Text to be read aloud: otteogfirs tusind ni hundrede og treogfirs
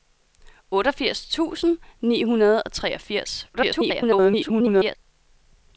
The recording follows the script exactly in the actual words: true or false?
false